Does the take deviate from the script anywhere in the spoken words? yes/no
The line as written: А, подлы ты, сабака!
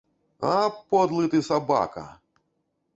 no